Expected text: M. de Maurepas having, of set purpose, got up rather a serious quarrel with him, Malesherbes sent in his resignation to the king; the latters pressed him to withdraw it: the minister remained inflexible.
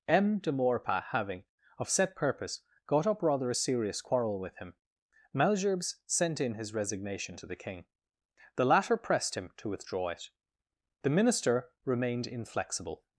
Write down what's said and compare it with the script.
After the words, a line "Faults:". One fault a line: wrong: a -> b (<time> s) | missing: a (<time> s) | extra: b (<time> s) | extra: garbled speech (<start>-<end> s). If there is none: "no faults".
M. de Maurepas having, of set purpose, got up rather a serious quarrel with him, Malesherbes sent in his resignation to the king; the latter pressed him to withdraw it: the minister remained inflexible.
Faults:
wrong: latters -> latter (8.7 s)